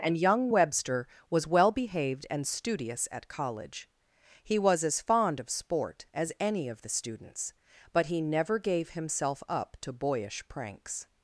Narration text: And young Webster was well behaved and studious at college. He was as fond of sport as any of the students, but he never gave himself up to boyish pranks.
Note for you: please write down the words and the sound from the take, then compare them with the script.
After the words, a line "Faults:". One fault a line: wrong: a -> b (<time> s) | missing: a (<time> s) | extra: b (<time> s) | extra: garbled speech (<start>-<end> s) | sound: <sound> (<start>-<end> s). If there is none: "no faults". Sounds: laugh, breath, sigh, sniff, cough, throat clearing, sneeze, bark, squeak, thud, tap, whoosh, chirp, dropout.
And young Webster was well behaved and studious at college. He was as fond of sport as any of the students, but he never gave himself up to boyish pranks.
Faults:
no faults